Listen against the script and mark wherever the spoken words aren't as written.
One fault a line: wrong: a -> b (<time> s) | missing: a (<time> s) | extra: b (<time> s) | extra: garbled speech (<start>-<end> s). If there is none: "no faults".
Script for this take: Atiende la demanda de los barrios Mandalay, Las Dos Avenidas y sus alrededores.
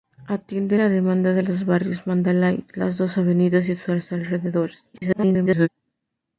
extra: garbled speech (4.9-5.7 s)